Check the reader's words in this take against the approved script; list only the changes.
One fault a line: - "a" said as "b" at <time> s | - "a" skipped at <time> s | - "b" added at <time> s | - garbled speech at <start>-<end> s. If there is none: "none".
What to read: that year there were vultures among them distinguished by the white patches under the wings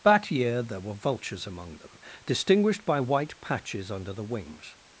- "the" skipped at 3.0 s